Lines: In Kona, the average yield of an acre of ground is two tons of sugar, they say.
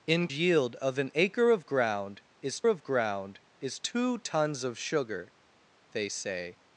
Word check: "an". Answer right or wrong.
wrong